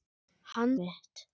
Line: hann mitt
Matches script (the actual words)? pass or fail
pass